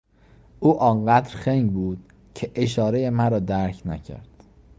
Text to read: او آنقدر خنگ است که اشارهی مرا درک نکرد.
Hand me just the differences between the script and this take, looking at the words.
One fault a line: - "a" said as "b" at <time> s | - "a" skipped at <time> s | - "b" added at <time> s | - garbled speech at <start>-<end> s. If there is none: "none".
- "است" said as "بود" at 1.7 s